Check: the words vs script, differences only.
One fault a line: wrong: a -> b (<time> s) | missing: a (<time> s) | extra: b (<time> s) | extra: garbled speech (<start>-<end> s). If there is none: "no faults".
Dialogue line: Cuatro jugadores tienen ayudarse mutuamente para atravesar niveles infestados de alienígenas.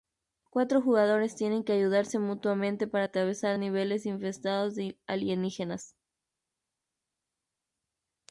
extra: que (1.6 s)